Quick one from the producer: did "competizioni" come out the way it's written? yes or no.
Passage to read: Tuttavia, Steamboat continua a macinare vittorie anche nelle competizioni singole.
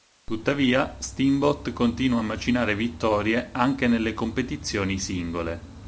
yes